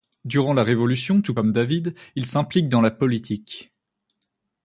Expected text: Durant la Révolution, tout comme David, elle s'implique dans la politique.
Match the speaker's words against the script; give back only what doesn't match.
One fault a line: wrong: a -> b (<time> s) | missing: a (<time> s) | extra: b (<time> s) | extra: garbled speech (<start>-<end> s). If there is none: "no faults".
wrong: elle -> il (2.2 s)